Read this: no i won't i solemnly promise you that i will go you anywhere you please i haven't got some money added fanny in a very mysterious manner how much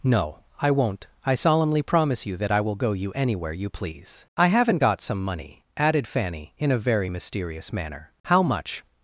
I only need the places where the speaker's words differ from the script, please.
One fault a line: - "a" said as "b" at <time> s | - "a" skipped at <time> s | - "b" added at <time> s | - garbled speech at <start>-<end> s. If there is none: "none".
none